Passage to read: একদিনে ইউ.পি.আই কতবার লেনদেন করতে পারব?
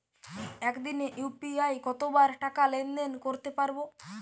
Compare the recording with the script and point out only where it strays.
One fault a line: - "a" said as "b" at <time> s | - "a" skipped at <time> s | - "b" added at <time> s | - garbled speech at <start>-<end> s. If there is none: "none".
- "টাকা" added at 2.4 s